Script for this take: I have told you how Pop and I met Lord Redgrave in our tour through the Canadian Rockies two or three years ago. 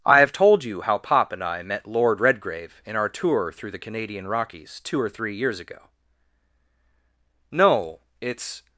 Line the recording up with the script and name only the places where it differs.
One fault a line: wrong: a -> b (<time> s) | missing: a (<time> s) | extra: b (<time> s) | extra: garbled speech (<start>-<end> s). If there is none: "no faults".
extra: No it's (7.5 s)